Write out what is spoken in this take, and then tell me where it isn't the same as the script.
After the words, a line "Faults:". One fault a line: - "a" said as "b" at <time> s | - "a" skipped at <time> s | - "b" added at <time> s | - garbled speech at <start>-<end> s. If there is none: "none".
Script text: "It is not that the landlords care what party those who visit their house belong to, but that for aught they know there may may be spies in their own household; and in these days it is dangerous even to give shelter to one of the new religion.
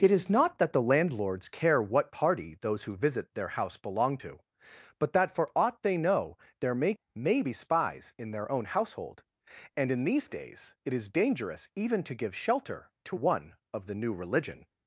"It is not that the landlords care what party those who visit their house belong to, but that for aught they know there may may be spies in their own household; and in these days it is dangerous even to give shelter to one of the new religion.
Faults:
none